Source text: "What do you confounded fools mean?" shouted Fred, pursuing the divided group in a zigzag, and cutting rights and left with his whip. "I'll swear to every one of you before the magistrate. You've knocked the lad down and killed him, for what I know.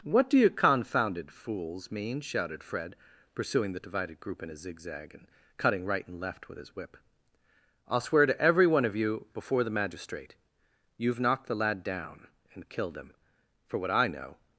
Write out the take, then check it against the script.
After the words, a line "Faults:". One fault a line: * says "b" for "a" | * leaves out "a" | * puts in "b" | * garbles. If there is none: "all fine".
"What do you confounded fools mean?" shouted Fred, pursuing the divided group in a zigzag, and cutting right and left with his whip. "I'll swear to every one of you before the magistrate. You've knocked the lad down and killed him, for what I know.
Faults:
* says "right" for "rights"